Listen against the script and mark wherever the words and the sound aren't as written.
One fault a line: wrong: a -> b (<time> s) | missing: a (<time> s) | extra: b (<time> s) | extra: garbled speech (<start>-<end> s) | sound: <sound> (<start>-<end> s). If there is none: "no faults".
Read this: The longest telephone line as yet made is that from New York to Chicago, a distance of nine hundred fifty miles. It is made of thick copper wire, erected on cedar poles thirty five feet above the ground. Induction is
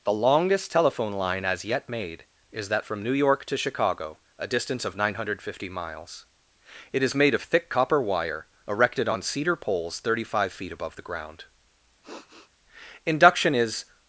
sound: sniff (12.0-12.5 s)